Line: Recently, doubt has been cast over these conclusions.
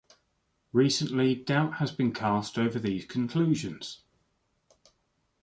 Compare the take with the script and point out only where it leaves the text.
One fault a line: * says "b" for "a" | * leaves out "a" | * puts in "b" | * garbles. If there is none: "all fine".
all fine